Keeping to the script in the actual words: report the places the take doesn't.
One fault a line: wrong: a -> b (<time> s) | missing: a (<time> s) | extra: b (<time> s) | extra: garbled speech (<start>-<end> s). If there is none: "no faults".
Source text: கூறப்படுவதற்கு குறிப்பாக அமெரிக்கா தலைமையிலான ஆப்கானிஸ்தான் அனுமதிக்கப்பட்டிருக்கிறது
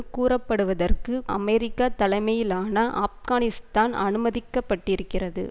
missing: குறிப்பாக (1.2 s)